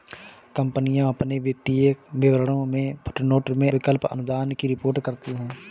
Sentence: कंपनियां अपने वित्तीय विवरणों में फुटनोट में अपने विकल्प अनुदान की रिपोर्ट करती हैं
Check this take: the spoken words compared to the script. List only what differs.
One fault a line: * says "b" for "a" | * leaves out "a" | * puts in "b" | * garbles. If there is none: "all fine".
* leaves out "अपने"